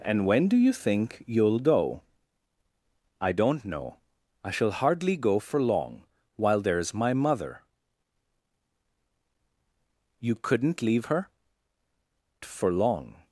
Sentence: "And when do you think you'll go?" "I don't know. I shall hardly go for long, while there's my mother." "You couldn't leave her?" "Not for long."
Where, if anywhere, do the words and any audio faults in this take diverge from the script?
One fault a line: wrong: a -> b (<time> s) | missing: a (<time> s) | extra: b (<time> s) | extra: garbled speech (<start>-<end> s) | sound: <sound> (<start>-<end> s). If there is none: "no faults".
missing: Not (11.3 s)